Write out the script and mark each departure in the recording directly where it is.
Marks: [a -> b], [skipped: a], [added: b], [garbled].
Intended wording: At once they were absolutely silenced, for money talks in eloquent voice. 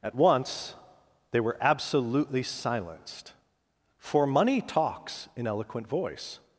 At once they were absolutely silenced, for money talks in eloquent voice.